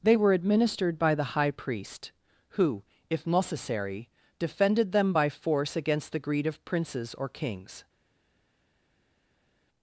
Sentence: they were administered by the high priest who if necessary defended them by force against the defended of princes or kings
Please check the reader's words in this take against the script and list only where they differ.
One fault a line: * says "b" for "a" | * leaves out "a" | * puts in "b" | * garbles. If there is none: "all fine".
* says "greed" for "defended"